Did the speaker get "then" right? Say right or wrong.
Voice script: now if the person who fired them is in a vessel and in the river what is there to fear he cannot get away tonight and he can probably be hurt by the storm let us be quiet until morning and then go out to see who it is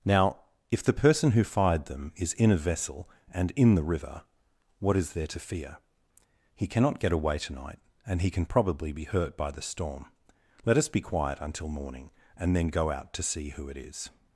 right